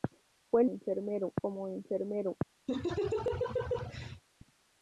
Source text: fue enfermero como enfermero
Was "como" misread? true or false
false